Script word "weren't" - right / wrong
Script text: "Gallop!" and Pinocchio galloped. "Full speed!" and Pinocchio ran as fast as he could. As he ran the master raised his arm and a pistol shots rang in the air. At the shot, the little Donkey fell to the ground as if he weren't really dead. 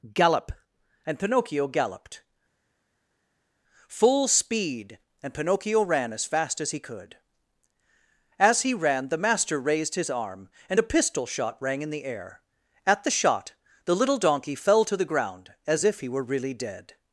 wrong